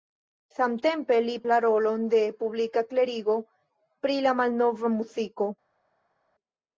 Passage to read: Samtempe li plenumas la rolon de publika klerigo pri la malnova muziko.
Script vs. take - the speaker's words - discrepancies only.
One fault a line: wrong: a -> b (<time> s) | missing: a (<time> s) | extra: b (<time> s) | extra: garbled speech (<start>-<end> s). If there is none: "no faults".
missing: plenumas (1.4 s)